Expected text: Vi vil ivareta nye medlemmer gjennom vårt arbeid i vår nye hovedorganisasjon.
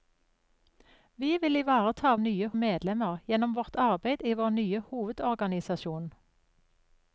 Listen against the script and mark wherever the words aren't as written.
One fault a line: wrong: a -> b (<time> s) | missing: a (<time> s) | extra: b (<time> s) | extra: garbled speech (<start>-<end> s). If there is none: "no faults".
no faults